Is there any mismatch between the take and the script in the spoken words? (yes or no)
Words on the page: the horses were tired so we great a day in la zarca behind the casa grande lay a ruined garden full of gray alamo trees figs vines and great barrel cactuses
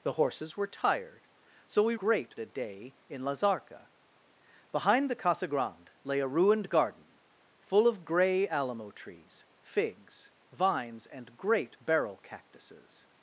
no